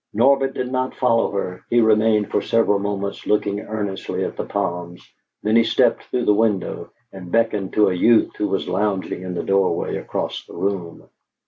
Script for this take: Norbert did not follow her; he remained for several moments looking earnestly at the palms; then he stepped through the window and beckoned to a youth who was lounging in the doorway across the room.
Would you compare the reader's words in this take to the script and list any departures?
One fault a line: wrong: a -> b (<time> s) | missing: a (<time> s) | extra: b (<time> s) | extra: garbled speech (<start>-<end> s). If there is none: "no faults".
no faults